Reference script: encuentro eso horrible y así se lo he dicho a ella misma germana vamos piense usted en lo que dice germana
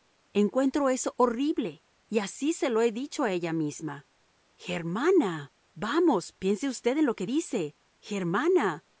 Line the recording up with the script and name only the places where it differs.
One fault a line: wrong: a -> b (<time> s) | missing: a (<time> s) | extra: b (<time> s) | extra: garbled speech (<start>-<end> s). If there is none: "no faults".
no faults